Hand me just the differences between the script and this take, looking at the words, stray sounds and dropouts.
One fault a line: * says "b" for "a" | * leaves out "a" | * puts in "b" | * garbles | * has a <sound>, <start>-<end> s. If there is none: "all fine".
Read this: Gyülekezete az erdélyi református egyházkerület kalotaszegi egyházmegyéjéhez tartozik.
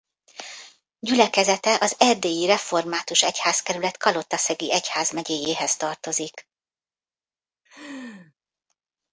* has a laugh, 7.7-8.3 s